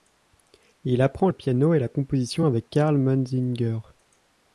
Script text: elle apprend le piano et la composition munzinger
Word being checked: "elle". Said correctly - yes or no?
no